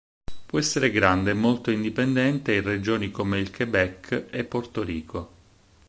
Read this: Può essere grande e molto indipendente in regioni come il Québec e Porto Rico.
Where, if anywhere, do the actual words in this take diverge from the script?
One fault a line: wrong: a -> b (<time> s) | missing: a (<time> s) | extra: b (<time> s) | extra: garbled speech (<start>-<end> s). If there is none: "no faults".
no faults